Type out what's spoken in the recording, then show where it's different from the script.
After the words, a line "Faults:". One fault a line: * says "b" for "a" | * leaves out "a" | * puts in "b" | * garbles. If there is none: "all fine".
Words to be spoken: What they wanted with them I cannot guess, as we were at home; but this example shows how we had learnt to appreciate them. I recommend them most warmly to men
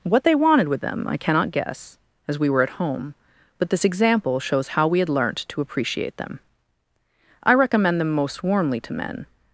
What they wanted with them I cannot guess, as we were at home; but this example shows how we had learnt to appreciate them. I recommend them most warmly to men
Faults:
all fine